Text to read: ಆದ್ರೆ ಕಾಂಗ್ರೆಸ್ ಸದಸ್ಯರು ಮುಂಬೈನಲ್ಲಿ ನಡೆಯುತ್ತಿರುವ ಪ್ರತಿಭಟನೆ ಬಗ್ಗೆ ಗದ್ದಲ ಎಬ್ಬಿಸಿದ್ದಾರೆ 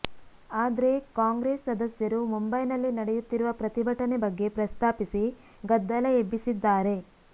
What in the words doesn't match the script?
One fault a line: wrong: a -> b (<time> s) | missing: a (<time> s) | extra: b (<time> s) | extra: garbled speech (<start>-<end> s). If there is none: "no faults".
extra: ಪ್ರಸ್ತಾಪಿಸಿ (4.6 s)